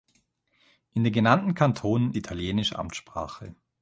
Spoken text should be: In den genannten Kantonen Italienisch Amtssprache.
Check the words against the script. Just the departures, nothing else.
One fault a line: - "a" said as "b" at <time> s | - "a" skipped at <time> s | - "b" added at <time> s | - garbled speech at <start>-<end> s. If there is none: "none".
none